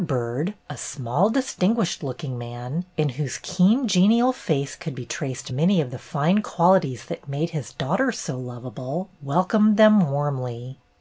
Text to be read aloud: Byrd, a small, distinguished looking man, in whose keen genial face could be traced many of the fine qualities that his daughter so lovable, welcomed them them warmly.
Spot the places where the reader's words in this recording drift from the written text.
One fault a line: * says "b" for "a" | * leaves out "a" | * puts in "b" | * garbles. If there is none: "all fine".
* puts in "made"
* leaves out "them"